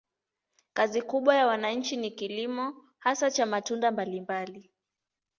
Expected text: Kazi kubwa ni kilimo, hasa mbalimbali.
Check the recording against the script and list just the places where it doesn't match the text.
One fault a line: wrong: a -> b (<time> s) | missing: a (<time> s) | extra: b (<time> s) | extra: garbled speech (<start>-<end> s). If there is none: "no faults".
extra: ya wananchi (1.4 s)
extra: cha matunda (3.3 s)